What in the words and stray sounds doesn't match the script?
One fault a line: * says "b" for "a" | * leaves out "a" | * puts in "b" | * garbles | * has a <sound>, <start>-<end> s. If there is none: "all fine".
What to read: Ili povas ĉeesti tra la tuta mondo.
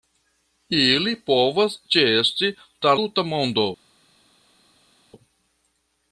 * leaves out "la"